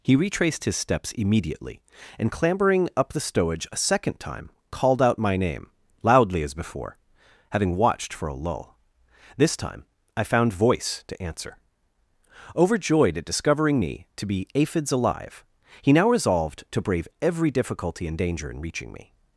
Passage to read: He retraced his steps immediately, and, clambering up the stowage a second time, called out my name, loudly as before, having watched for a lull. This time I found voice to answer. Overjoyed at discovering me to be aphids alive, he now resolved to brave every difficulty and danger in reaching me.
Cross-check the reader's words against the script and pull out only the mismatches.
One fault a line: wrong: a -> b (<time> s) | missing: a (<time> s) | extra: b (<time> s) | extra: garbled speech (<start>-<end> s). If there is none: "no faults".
no faults